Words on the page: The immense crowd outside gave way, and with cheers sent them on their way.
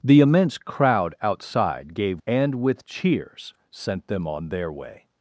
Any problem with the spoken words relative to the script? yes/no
yes